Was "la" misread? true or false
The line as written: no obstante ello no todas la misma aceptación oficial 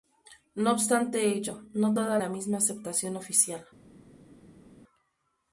false